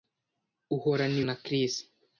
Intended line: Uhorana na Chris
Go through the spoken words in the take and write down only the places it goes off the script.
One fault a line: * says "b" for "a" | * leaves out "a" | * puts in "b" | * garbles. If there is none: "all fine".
all fine